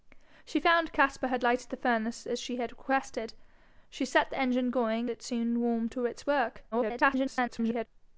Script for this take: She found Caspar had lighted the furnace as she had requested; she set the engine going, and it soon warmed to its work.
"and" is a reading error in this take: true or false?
true